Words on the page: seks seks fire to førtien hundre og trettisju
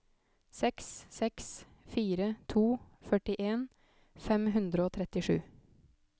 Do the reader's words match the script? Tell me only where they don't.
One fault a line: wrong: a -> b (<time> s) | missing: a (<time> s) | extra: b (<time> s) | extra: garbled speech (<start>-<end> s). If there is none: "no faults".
extra: fem (4.3 s)